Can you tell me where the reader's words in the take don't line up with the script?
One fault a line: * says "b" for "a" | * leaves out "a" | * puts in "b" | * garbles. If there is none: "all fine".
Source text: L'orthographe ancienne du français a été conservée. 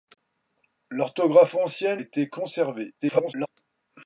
* leaves out "du français a"
* garbles